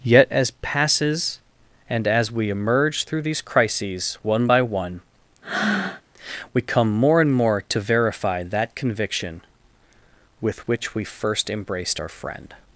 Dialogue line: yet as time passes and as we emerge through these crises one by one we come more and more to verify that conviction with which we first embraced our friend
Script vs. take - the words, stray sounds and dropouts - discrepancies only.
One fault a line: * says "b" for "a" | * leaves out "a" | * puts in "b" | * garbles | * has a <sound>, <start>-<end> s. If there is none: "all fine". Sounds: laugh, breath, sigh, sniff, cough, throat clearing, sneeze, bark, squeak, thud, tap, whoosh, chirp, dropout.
* leaves out "time"
* has a breath, 5.4-6.0 s